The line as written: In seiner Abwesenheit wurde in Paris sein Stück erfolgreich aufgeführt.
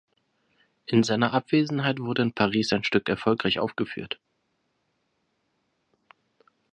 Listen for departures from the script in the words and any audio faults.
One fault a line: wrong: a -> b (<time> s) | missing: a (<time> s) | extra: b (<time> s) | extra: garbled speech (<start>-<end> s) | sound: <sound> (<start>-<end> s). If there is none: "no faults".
no faults